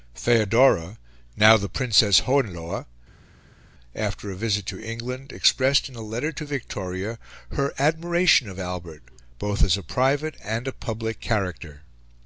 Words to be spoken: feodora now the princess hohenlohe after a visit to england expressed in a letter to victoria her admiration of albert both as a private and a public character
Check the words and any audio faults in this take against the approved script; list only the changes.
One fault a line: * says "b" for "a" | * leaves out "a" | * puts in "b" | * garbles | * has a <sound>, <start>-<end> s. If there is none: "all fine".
all fine